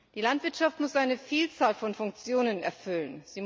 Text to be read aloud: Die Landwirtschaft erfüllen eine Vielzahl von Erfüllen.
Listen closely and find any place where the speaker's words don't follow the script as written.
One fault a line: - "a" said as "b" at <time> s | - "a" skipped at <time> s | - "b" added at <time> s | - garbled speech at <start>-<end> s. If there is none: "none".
- "erfüllen" said as "muss" at 0.8 s
- "Funktionen" added at 1.9 s